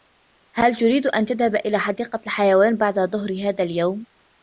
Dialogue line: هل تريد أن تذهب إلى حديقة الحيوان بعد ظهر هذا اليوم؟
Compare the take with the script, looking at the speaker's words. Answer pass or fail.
pass